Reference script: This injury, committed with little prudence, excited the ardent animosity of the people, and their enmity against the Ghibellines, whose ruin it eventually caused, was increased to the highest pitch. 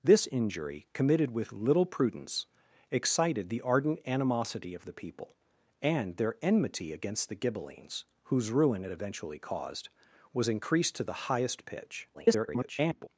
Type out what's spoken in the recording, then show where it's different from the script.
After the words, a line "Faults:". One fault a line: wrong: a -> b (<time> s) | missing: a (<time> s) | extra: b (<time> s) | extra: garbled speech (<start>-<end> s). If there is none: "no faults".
This injury, committed with little prudence, excited the ardent animosity of the people, and their enmity against the Ghibellines, whose ruin it eventually caused, was increased to the highest pitch. [garbled]
Faults:
extra: garbled speech (12.1-13.1 s)